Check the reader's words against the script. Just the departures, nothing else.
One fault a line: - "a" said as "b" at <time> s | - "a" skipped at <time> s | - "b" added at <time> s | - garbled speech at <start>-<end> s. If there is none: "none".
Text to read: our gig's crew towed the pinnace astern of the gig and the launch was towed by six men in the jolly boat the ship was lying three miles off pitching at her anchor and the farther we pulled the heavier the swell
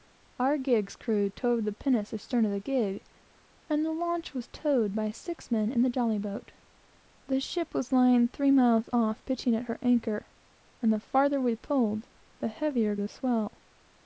none